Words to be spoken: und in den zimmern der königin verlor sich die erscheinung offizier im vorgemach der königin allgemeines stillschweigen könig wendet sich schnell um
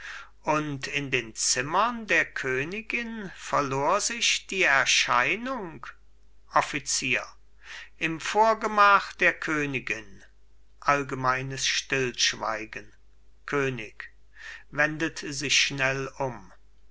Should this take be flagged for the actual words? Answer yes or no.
no